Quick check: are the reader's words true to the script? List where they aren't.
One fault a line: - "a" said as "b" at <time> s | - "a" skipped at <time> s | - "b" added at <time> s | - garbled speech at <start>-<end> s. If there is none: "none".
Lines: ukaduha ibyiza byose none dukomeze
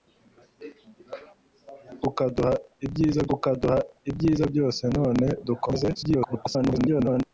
- "ukaduha ibyiza" added at 3.3 s
- garbled speech at 5.9-7.2 s